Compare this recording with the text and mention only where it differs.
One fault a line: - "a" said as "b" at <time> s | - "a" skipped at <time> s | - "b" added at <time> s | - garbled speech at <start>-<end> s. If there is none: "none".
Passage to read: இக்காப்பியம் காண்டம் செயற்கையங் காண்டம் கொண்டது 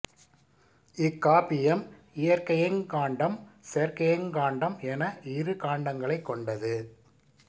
- "இயற்கையங்" added at 2.1 s
- "என இரு காண்டங்களைக்" added at 4.8 s